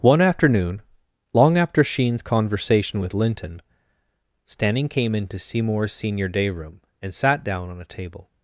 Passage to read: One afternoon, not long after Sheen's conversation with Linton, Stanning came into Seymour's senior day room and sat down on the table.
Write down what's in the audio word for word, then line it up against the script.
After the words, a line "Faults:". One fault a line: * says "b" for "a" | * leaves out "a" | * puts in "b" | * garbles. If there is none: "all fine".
One afternoon, long after Sheen's conversation with Linton, Stanning came into Seymour's senior day room and sat down on a table.
Faults:
* leaves out "not"
* says "a" for "the"